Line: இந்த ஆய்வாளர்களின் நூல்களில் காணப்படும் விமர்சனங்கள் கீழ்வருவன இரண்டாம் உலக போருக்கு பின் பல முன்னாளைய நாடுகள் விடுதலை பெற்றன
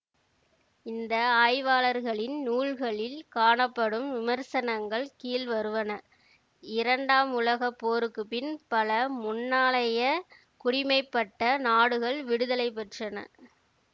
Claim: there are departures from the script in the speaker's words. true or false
true